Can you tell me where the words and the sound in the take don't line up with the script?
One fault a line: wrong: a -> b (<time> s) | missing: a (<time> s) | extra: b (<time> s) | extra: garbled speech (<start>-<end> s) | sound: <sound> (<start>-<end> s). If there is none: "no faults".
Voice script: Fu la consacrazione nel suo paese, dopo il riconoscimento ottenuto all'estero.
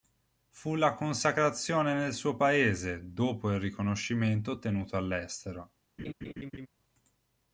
sound: laugh (6.0-6.7 s)